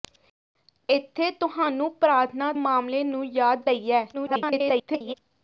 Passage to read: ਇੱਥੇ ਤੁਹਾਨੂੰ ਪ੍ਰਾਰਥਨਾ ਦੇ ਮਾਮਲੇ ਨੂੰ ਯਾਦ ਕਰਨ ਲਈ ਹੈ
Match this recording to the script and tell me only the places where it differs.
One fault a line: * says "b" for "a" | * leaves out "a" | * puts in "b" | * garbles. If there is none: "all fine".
* leaves out "ਦੇ"
* leaves out "ਕਰਨ"
* garbles